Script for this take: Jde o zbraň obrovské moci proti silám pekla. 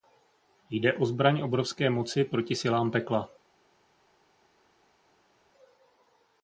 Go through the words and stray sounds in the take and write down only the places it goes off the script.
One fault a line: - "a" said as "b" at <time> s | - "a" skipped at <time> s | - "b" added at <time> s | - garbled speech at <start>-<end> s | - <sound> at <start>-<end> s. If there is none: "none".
none